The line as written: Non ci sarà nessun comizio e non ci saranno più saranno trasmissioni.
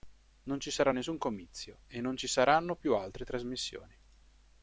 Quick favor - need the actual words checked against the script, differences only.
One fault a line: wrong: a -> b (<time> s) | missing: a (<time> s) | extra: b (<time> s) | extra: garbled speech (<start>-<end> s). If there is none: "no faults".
wrong: saranno -> altre (3.0 s)